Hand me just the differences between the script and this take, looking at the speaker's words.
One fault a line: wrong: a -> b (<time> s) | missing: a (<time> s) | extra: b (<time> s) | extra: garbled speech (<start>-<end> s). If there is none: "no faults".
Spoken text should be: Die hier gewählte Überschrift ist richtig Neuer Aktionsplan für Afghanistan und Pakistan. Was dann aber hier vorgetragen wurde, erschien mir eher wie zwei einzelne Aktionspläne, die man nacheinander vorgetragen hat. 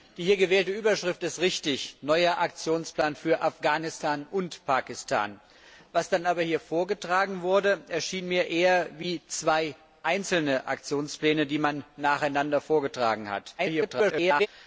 extra: garbled speech (13.6-14.5 s)